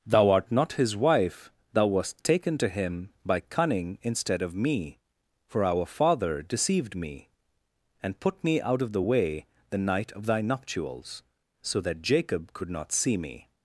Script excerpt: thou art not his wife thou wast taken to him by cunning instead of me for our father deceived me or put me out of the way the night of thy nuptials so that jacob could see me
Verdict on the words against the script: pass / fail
fail